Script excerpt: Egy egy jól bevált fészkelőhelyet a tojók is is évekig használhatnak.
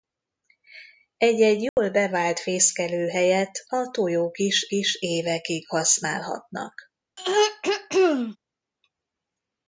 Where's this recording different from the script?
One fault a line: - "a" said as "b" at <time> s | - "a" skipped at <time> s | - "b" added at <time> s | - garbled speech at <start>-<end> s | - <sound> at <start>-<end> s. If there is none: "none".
- dropout at 1.7-1.8 s
- throat clearing at 7.2-8.4 s